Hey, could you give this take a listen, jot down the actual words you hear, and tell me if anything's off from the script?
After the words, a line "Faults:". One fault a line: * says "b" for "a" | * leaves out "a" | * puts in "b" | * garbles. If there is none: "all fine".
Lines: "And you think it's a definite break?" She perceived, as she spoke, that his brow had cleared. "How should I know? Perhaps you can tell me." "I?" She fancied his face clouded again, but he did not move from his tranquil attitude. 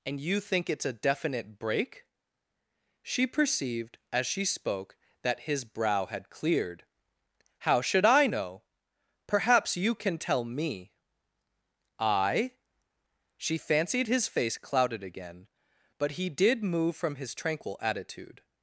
"And you think it's a definite break?" She perceived, as she spoke, that his brow had cleared. "How should I know? Perhaps you can tell me." "I?" She fancied his face clouded again, but he did move from his tranquil attitude.
Faults:
* leaves out "not"